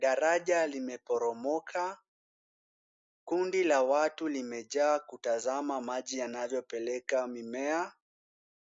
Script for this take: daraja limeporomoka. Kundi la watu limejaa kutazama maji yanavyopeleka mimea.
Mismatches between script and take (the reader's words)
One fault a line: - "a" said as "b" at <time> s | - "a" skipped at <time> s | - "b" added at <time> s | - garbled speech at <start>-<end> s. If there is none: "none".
none